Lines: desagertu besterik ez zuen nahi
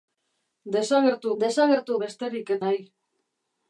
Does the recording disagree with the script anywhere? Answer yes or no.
yes